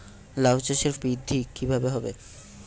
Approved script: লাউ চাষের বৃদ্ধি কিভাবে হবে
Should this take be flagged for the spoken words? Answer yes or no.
no